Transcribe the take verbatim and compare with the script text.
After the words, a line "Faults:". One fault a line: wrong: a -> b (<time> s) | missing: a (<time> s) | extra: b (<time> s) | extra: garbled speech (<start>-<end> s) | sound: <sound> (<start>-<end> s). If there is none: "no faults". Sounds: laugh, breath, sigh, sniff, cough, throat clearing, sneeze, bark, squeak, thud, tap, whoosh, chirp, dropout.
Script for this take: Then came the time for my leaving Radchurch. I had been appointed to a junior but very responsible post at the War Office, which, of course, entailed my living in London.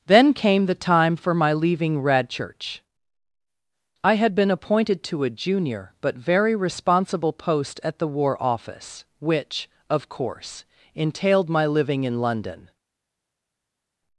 Then came the time for my leaving Radchurch. I had been appointed to a junior but very responsible post at the War Office, which, of course, entailed my living in London.
Faults:
no faults